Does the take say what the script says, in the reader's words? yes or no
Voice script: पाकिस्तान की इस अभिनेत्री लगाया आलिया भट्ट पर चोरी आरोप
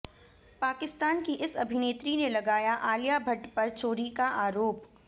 no